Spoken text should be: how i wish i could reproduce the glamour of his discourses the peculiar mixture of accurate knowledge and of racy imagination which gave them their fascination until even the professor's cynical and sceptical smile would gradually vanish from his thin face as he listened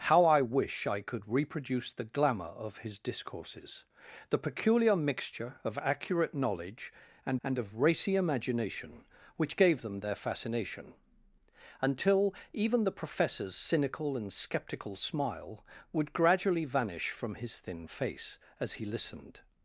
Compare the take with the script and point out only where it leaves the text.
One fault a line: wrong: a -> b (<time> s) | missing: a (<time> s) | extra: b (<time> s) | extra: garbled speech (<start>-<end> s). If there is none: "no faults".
extra: and (7.4 s)